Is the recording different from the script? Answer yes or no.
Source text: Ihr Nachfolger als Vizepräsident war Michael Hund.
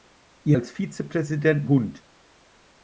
yes